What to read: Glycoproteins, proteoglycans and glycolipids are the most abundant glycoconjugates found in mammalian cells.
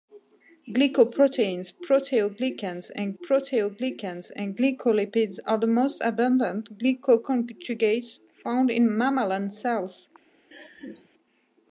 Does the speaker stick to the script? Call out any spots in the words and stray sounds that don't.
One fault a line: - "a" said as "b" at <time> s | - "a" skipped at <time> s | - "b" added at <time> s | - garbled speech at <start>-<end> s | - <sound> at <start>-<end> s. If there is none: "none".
- "proteoglycans and" added at 3.1 s
- laugh at 10.5-11.1 s